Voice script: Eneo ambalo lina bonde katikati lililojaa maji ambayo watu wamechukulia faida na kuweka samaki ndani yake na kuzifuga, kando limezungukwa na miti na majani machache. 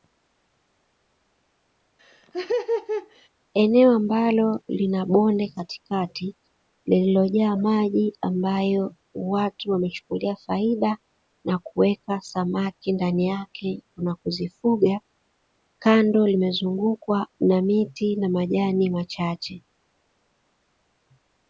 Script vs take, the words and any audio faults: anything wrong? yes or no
yes